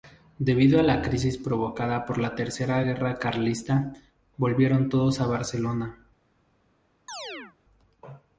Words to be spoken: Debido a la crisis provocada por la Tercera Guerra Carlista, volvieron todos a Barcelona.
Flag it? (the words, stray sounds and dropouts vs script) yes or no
yes